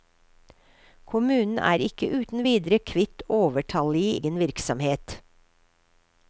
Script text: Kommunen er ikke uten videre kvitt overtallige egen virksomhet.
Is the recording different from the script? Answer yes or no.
no